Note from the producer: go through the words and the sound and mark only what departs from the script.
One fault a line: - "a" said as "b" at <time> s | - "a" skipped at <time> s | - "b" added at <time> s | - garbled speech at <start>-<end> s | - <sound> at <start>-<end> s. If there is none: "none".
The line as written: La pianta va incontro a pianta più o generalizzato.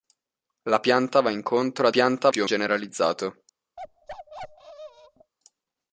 - bark at 3.8-5.3 s